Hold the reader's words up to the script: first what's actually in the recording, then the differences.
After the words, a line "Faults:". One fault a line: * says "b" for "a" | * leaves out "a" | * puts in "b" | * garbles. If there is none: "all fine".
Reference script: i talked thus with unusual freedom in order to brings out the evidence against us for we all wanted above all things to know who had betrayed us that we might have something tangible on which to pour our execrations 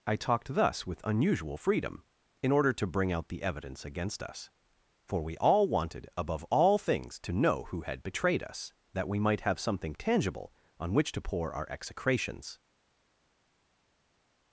i talked thus with unusual freedom in order to bring out the evidence against us for we all wanted above all things to know who had betrayed us that we might have something tangible on which to pour our execrations
Faults:
* says "bring" for "brings"